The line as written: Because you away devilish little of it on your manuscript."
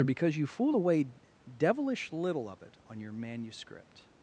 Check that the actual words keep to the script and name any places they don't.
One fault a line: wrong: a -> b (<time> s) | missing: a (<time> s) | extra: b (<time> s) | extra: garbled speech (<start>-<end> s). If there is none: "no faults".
extra: fool (0.5 s)